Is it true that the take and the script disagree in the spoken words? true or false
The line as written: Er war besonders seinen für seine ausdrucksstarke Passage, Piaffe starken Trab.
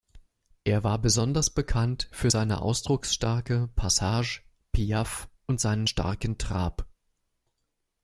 true